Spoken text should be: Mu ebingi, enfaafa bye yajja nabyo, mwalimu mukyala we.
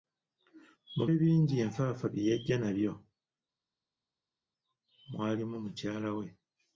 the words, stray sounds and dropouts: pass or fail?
pass